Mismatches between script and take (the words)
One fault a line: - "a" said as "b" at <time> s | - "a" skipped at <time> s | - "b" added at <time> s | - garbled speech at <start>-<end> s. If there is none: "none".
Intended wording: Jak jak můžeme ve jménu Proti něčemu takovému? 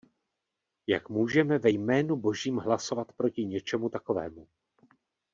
- "jak" skipped at 1.1 s
- "Božím hlasovat" added at 2.2 s